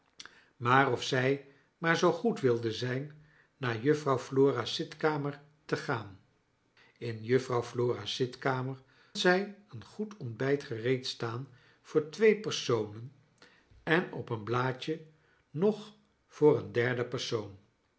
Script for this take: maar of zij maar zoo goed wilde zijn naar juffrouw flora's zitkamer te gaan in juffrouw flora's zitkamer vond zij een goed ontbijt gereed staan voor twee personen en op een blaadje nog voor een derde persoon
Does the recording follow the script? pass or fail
fail